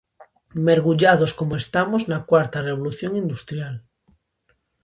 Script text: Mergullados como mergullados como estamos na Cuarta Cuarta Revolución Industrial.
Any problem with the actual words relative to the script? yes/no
yes